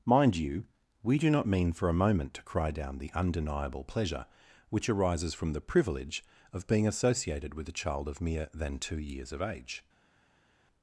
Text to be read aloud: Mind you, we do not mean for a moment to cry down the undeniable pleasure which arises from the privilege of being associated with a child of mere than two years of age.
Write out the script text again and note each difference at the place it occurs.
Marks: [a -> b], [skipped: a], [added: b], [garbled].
Mind you, we do not mean for a moment to cry down the undeniable pleasure which arises from the privilege of being associated with a child of mere than two years of age.